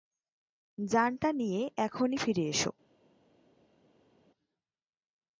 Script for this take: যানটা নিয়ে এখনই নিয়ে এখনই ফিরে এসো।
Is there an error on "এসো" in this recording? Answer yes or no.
no